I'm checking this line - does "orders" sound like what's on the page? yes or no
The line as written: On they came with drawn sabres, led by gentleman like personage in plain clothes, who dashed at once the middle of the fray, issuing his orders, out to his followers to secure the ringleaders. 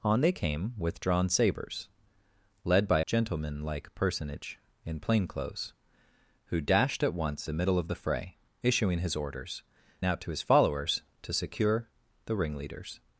yes